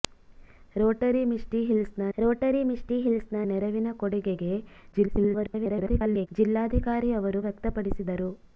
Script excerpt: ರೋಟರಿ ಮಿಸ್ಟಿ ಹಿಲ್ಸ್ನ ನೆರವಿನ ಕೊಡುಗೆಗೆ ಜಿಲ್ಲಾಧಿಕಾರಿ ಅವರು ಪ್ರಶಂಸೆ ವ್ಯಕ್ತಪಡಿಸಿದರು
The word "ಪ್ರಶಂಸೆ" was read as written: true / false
false